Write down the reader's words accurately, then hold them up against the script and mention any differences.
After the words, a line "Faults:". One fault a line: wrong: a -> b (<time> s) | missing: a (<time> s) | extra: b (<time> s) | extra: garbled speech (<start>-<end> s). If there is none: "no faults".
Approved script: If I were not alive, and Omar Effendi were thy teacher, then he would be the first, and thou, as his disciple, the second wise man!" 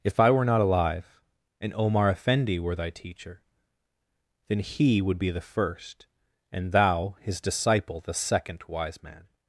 If I were not alive, and Omar Effendi were thy teacher, then he would be the first, and thou, his disciple, the second wise man!"
Faults:
missing: as (7.2 s)